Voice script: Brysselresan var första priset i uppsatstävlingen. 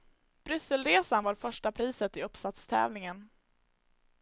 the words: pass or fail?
pass